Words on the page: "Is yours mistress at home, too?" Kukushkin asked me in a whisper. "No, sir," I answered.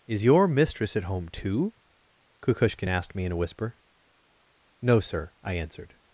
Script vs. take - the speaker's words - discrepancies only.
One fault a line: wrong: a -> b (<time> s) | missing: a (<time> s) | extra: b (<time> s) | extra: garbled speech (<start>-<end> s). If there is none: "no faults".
wrong: yours -> your (0.2 s)